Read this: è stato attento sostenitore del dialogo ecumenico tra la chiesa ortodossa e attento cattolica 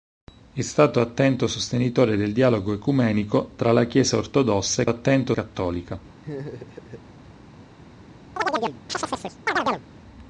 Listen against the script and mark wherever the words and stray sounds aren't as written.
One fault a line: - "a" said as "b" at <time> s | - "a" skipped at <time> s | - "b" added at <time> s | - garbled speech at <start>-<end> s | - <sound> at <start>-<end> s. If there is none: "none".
- laugh at 6.2-7.0 s
- chirp at 8.4-9.9 s